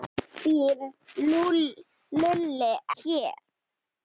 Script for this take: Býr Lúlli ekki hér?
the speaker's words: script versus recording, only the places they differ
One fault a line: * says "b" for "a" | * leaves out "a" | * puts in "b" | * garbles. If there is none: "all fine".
* leaves out "ekki"